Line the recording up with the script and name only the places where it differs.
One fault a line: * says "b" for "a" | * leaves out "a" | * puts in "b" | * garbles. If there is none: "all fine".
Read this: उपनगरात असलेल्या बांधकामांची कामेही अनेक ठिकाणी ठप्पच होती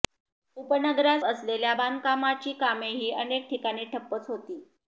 all fine